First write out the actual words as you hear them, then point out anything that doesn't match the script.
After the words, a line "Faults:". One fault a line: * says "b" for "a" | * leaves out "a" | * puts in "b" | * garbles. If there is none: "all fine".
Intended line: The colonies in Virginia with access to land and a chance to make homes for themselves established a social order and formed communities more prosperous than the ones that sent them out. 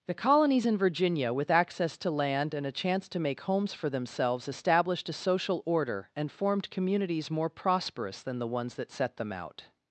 The colonies in Virginia with access to land and a chance to make homes for themselves established a social order and formed communities more prosperous than the ones that set them out.
Faults:
* says "set" for "sent"